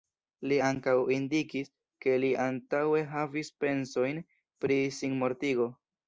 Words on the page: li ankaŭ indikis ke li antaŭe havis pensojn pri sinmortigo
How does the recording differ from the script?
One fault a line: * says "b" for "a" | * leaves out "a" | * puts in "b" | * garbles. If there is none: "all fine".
all fine